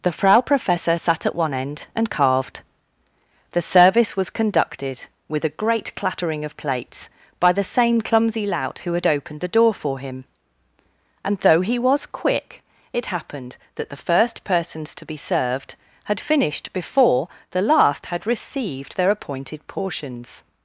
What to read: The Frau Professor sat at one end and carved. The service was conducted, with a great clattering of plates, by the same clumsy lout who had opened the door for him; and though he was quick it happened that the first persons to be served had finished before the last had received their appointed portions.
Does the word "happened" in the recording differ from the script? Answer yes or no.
no